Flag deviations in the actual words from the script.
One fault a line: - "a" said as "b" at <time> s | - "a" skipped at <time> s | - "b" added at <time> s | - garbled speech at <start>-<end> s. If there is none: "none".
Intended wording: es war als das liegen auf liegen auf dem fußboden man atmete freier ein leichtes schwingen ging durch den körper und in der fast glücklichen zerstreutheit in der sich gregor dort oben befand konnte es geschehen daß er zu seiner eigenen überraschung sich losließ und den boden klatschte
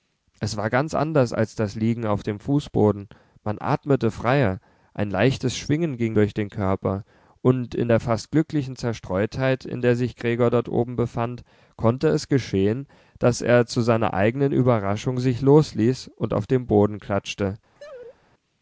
- "ganz anders" added at 0.7 s
- "liegen auf" skipped at 2.2 s
- "auf" added at 16.3 s